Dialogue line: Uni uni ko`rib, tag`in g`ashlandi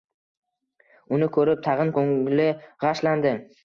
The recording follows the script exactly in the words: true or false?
false